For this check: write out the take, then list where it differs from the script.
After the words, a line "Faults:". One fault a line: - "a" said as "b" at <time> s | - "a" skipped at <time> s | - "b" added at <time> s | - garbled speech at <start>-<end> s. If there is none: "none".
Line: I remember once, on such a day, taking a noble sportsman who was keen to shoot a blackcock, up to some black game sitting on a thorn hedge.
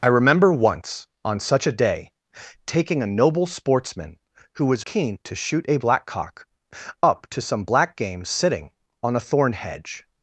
I remember once, on such a day, taking a noble sportsman who was keen to shoot a blackcock, up to some black game sitting on a thorn hedge.
Faults:
none